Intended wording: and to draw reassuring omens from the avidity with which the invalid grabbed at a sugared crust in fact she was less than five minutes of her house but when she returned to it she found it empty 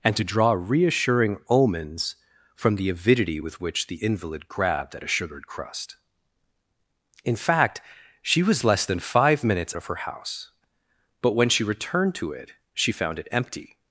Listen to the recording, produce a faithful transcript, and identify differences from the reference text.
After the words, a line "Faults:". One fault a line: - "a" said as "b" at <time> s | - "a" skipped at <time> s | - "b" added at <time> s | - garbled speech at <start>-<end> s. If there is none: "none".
and to draw reassuring omens from the avidity with which the invalid grabbed at a sugared crust in fact she was less than five minutes of her house but when she returned to it she found it empty
Faults:
none